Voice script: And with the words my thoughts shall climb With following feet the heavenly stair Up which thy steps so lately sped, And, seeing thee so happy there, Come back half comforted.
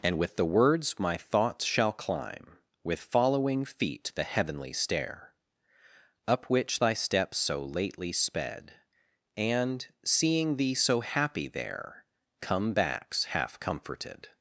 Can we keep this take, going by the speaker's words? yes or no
no